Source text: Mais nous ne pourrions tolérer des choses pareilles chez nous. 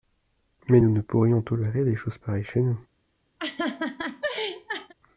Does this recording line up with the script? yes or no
yes